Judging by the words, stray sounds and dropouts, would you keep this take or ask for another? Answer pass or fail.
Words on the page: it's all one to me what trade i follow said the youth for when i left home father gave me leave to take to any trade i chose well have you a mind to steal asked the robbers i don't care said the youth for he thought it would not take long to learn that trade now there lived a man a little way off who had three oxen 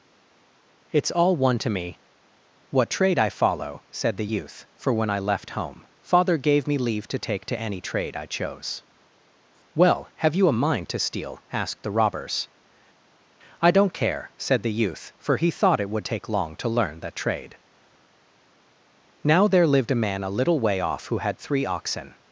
fail